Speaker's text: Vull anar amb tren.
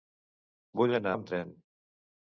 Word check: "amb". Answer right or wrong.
right